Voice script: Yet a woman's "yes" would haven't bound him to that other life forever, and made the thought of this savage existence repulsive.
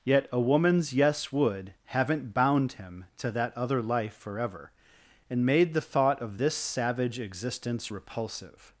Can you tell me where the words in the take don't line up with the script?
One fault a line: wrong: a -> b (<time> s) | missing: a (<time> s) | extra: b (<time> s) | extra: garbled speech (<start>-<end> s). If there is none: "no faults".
no faults